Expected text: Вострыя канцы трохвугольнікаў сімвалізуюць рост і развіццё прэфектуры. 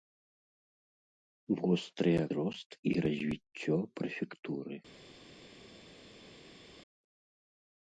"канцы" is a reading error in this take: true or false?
true